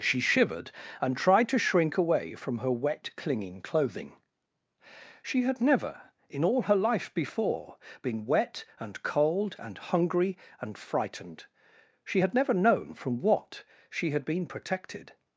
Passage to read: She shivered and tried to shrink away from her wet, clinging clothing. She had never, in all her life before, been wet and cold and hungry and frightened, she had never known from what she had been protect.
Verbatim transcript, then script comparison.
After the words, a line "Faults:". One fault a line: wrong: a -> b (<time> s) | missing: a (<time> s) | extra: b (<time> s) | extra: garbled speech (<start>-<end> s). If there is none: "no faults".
She shivered and tried to shrink away from her wet, clinging clothing. She had never, in all her life before, been wet and cold and hungry and frightened, she had never known from what she had been protected.
Faults:
wrong: protect -> protected (14.5 s)